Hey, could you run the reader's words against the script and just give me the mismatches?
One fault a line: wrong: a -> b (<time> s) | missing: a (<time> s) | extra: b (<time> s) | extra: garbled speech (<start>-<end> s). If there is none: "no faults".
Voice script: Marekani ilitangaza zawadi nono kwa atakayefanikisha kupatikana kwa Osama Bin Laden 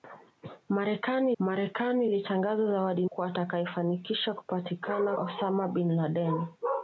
extra: marekani (1.4 s)
missing: nono (3.1 s)
missing: kwa (5.2 s)